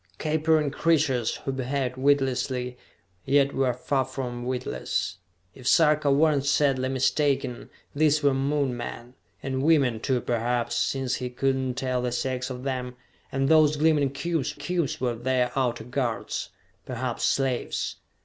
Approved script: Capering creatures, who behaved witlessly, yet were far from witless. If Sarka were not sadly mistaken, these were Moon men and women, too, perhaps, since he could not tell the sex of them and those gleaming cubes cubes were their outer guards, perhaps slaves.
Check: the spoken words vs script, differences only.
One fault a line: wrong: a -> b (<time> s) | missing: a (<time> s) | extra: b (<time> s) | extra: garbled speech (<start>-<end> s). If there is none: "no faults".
no faults